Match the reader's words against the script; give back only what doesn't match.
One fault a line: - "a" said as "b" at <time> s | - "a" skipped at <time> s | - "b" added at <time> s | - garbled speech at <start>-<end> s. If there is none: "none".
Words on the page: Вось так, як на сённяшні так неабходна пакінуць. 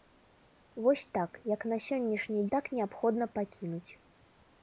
none